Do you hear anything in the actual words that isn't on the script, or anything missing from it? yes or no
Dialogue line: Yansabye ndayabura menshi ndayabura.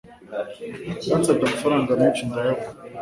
yes